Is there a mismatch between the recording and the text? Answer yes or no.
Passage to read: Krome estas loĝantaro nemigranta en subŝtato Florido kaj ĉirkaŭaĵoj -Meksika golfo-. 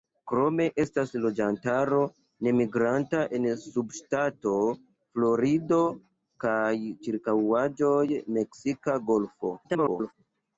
yes